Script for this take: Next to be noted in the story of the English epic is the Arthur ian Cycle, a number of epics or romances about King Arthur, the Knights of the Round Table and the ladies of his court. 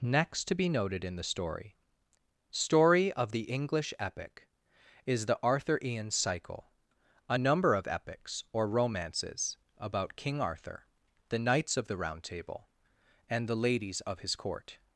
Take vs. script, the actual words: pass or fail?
fail